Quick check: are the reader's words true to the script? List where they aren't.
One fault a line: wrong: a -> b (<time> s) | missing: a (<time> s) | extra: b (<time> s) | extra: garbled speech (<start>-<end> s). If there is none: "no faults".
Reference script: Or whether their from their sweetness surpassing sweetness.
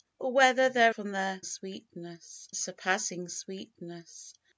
no faults